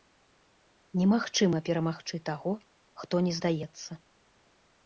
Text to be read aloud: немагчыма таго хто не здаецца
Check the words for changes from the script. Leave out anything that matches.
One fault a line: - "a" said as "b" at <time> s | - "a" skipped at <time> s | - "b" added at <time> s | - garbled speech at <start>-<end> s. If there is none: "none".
- "перамагчы" added at 1.7 s